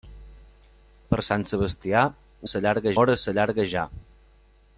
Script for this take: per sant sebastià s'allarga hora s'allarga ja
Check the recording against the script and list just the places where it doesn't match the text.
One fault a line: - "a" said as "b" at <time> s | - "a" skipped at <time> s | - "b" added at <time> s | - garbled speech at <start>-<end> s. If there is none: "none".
none